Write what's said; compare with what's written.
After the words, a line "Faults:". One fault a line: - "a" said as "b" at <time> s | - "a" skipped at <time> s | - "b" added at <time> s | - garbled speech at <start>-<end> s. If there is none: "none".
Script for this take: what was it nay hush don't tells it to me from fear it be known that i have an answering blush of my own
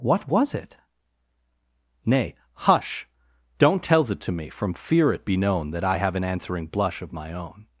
what was it nay hush don't tells it to me from fear it be known that i have an answering blush of my own
Faults:
none